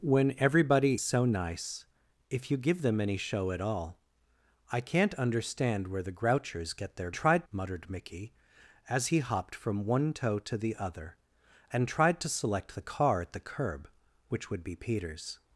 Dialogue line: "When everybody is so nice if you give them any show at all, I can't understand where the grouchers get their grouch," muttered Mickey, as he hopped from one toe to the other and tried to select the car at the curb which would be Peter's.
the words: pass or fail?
fail